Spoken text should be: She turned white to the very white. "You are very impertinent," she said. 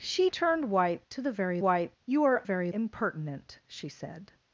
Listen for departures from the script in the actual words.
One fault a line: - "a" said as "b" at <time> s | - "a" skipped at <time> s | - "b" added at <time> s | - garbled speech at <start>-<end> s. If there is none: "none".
none